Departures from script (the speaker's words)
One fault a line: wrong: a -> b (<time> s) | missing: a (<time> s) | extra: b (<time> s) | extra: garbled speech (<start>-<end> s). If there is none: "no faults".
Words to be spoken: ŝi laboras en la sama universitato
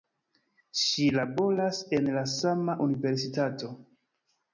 no faults